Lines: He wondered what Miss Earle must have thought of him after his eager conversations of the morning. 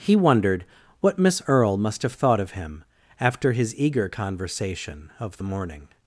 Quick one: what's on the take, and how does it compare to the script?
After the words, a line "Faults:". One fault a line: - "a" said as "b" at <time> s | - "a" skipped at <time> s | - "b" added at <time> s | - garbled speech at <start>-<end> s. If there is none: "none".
He wondered what Miss Earle must have thought of him after his eager conversation of the morning.
Faults:
- "conversations" said as "conversation" at 4.1 s